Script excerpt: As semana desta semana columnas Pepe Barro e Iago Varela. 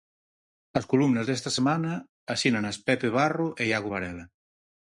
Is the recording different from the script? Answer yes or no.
yes